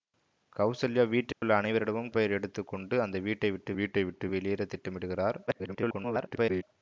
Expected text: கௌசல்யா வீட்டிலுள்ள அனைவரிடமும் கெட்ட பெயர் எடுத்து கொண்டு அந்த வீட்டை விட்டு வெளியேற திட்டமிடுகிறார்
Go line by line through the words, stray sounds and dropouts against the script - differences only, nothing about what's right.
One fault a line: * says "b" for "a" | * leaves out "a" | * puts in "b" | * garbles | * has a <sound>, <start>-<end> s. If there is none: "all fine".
* has a dropout, 1.3-1.4 s
* leaves out "கெட்ட"
* puts in "வீட்டை விட்டு"
* garbles